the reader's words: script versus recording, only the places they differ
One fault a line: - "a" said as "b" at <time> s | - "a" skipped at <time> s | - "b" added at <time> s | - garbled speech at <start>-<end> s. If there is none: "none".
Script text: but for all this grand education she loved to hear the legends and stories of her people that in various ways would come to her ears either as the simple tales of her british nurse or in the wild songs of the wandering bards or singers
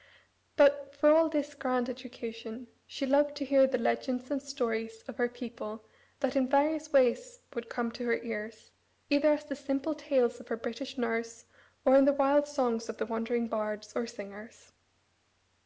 none